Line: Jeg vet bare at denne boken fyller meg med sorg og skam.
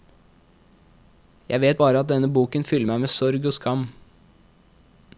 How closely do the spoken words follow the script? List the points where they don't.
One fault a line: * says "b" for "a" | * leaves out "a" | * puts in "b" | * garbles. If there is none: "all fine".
all fine